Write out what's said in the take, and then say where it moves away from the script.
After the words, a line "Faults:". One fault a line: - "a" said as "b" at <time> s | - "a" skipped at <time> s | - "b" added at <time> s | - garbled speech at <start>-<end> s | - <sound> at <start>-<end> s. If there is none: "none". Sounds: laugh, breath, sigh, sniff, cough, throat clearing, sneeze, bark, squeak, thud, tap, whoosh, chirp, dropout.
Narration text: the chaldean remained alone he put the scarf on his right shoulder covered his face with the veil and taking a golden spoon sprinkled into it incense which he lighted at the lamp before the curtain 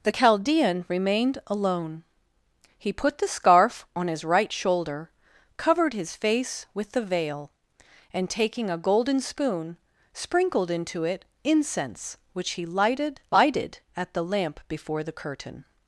the chaldean remained alone he put the scarf on his right shoulder covered his face with the veil and taking a golden spoon sprinkled into it incense which he lighted lighted at the lamp before the curtain
Faults:
- "lighted" added at 13.3 s